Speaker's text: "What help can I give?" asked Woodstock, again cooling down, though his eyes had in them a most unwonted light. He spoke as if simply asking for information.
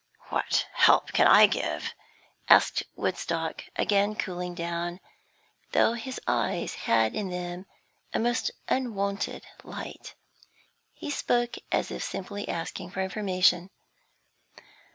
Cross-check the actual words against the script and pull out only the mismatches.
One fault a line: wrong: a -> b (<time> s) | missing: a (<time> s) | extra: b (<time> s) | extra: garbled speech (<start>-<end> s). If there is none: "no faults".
no faults